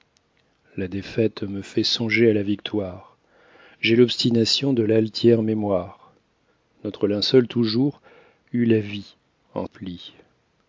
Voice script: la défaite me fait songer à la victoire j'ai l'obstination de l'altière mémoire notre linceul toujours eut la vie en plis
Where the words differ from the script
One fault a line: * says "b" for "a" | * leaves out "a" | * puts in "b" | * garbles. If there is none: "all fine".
all fine